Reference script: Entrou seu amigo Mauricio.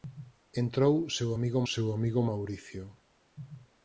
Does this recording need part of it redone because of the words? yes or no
yes